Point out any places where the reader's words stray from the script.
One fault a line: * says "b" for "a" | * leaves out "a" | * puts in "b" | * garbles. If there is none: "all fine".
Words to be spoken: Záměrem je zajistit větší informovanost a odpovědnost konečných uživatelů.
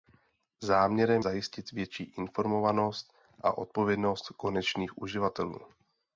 * leaves out "je"